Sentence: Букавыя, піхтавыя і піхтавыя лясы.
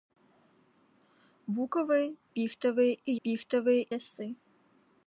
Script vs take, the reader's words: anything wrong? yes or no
no